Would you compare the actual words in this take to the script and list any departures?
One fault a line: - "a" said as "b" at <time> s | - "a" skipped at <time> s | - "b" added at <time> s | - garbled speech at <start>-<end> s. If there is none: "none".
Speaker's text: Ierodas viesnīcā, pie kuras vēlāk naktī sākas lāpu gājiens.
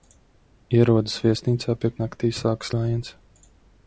- "kuras vēlāk" skipped at 1.9 s
- "lāpu" skipped at 2.7 s